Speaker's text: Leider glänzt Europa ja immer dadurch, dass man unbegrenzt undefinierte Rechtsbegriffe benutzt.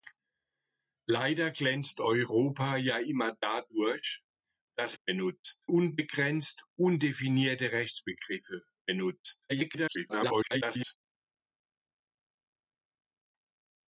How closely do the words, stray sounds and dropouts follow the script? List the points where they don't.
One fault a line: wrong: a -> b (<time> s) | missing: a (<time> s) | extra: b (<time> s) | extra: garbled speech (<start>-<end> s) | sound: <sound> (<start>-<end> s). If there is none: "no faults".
wrong: man -> benutzt (5.0 s)
extra: garbled speech (9.5-11.0 s)